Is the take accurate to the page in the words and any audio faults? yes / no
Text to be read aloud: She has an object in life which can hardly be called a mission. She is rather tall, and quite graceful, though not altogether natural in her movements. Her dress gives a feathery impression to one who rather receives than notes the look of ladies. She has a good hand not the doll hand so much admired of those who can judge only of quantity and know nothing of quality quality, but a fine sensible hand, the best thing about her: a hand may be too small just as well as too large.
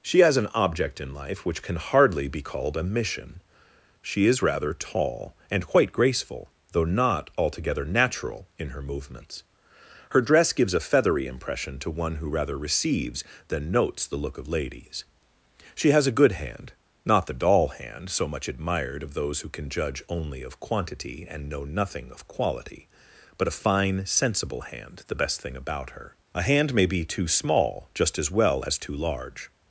no